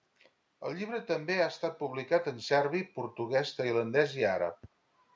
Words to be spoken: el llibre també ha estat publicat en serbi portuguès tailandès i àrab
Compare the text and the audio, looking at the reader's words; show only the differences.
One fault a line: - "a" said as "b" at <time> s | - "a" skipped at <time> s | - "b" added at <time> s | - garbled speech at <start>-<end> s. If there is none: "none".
none